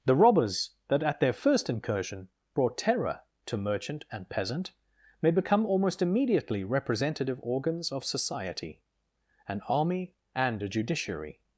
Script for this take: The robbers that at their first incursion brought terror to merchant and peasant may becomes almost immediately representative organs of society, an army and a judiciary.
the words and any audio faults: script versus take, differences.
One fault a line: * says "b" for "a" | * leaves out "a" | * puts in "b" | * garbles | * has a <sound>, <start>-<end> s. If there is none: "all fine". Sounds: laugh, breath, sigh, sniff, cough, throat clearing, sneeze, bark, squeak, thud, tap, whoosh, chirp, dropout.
* says "become" for "becomes"